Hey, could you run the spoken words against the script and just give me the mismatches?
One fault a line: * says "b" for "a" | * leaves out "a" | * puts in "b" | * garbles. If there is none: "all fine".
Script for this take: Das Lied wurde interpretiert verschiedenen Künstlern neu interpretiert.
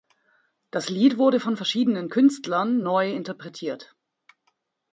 * says "von" for "interpretiert"